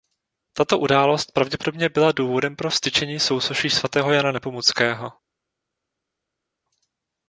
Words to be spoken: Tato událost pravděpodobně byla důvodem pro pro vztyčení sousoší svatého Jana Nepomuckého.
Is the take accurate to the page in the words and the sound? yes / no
no